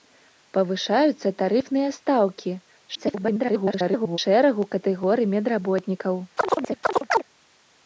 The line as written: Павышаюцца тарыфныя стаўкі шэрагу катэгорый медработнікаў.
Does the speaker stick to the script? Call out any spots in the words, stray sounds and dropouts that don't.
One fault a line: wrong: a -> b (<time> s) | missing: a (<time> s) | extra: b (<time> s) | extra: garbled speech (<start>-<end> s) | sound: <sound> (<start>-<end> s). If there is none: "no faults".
extra: garbled speech (2.9-4.2 s)
sound: chirp (6.4-7.2 s)